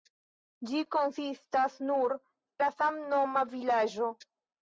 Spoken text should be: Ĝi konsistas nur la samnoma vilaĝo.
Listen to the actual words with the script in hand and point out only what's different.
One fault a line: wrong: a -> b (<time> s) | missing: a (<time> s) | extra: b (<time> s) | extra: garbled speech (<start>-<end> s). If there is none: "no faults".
no faults